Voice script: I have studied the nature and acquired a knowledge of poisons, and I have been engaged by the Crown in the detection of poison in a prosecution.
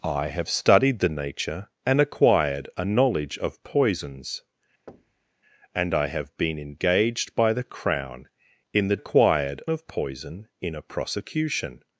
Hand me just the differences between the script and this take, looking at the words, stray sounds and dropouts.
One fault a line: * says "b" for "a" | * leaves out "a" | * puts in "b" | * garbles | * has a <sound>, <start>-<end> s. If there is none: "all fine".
* has a thud, 4.9-5.3 s
* says "acquired" for "detection"